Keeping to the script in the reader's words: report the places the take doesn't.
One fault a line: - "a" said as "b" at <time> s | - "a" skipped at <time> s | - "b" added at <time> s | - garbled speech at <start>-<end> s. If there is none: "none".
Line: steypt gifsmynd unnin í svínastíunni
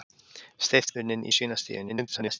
- "gifsmynd" skipped at 0.9 s
- garbled speech at 1.9-2.4 s